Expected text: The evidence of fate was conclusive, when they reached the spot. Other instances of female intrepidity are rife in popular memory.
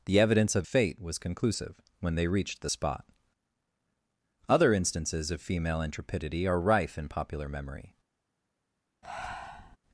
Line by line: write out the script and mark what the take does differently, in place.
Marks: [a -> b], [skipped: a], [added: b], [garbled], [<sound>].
The evidence of fate was conclusive, when they reached the spot. Other instances of female intrepidity are rife in popular memory. [breath]